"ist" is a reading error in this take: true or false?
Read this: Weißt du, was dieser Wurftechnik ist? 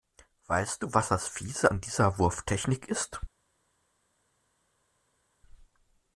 false